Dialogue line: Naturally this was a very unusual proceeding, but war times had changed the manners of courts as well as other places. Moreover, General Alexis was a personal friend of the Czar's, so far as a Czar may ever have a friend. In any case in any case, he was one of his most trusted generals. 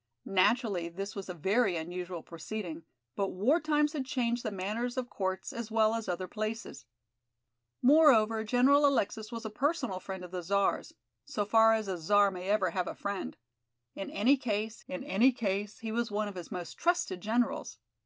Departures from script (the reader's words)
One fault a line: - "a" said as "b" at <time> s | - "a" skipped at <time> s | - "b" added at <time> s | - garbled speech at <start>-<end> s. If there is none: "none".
none